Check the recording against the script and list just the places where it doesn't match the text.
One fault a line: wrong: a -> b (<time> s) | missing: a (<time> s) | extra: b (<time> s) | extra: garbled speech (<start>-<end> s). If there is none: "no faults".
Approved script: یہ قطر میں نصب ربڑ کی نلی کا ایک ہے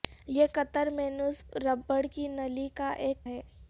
no faults